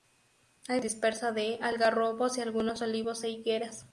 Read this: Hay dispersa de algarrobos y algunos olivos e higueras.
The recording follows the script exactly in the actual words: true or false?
true